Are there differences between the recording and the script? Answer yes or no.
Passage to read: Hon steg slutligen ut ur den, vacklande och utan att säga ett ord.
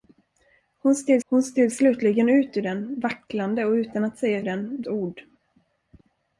yes